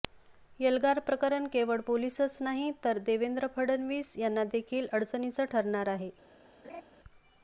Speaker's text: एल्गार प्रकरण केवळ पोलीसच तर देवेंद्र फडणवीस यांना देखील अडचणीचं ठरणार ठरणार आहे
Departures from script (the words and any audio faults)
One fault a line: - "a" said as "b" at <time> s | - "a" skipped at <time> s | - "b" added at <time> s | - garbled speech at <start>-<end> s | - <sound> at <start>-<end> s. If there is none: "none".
- "नाही" added at 2.4 s
- "ठरणार" skipped at 5.9 s
- laugh at 6.6-6.8 s